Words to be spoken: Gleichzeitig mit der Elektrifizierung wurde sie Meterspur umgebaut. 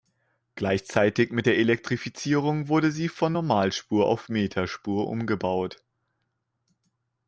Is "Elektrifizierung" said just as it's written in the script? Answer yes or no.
yes